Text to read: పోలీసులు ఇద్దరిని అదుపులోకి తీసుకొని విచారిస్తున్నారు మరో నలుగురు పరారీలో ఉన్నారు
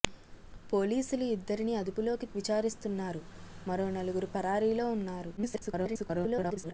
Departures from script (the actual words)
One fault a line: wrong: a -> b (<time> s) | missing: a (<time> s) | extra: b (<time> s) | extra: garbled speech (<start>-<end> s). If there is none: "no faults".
missing: తీసుకొని (2.3 s)
extra: garbled speech (5.4-6.7 s)